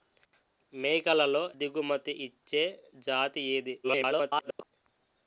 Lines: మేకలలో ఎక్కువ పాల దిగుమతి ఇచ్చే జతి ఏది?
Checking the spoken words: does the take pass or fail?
fail